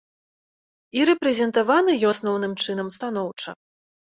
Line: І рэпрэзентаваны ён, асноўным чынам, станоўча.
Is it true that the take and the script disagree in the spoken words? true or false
true